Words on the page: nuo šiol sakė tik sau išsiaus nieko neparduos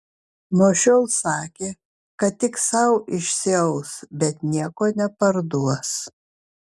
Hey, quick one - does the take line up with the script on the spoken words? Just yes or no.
no